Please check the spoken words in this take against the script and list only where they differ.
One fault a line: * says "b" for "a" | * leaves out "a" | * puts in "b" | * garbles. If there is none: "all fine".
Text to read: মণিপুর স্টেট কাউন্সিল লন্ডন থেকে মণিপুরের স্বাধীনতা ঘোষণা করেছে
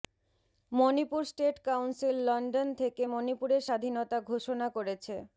all fine